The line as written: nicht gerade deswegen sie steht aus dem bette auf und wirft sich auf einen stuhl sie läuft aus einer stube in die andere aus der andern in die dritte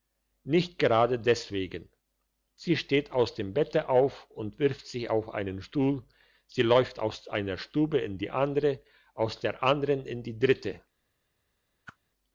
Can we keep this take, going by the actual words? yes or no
yes